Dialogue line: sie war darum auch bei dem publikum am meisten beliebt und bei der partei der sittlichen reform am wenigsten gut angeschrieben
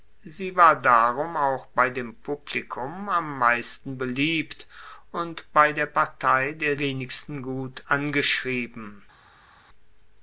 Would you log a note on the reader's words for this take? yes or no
yes